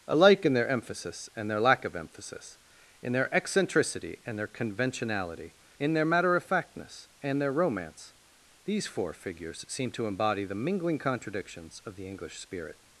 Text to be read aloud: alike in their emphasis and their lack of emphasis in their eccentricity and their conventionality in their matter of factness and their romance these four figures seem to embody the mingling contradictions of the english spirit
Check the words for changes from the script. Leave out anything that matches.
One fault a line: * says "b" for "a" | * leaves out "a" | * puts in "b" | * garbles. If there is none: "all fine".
all fine